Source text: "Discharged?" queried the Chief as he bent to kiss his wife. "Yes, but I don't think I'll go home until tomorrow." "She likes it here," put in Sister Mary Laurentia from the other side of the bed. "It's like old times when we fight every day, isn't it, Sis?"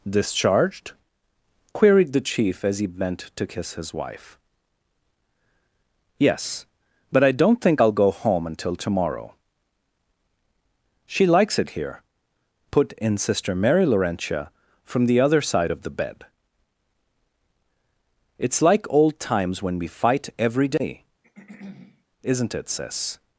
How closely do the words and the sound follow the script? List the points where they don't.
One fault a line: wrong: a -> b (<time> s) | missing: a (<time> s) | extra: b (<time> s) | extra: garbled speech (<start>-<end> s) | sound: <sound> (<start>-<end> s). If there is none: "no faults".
sound: throat clearing (21.2-22.0 s)